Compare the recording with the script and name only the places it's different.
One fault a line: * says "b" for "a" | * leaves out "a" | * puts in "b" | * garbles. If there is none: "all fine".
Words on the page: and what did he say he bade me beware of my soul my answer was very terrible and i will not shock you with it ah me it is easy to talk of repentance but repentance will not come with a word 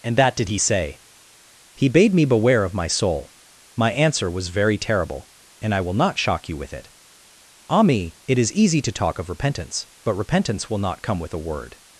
* says "that" for "what"